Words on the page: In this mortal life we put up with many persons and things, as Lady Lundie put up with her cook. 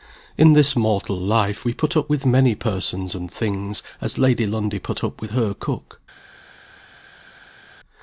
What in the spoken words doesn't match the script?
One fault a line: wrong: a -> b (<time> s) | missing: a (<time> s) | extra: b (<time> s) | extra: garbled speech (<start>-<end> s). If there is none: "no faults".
no faults